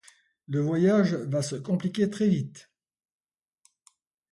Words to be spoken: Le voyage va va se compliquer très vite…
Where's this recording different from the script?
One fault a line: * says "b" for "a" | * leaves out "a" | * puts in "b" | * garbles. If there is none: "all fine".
* leaves out "va"